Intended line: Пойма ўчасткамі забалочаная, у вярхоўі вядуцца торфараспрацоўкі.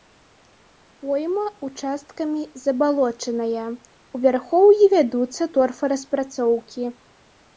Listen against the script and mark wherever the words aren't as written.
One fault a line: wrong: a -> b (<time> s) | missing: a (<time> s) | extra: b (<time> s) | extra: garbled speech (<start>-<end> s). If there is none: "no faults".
no faults